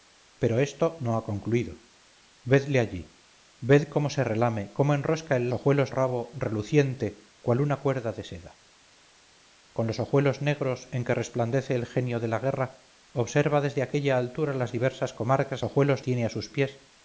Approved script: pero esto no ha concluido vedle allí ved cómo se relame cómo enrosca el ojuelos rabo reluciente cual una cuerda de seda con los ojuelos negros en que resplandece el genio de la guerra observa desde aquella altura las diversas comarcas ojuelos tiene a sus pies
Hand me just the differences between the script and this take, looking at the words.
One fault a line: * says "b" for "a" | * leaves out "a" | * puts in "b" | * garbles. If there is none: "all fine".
all fine